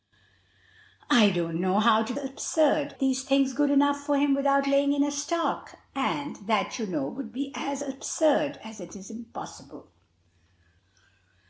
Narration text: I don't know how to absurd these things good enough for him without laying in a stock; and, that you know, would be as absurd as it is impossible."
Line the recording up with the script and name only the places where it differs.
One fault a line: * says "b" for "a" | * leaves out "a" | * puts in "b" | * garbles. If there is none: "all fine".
all fine